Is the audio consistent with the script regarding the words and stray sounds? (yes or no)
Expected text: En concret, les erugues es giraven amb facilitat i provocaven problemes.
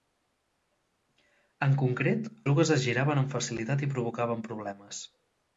no